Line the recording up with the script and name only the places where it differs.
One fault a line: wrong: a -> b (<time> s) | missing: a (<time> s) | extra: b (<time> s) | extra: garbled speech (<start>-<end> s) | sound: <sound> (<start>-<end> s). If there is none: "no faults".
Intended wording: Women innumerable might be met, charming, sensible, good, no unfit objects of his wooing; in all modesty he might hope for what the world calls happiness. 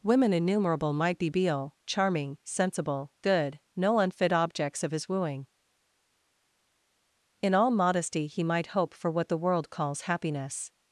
wrong: met -> beal (1.3 s)